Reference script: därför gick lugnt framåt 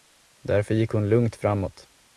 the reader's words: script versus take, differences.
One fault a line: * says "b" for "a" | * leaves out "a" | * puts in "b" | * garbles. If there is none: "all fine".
* puts in "hon"